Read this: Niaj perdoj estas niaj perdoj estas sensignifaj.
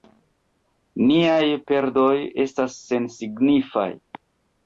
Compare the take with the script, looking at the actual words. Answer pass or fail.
fail